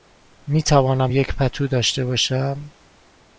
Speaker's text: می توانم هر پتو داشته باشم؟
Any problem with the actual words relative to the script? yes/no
yes